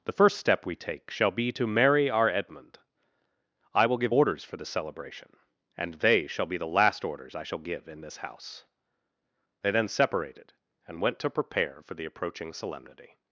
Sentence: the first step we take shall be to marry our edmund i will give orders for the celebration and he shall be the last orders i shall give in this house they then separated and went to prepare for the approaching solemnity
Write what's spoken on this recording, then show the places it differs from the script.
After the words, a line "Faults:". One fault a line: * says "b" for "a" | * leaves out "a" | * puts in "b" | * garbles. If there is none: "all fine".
the first step we take shall be to marry our edmund i will give orders for the celebration and they shall be the last orders i shall give in this house they then separated and went to prepare for the approaching solemnity
Faults:
* says "they" for "he"